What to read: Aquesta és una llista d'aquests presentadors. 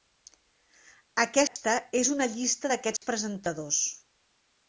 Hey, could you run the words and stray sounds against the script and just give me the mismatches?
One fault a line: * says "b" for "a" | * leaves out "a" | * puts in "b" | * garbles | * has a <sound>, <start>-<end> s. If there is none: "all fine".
* has a dropout, 1.5-1.6 s
* has a dropout, 3.0-3.0 s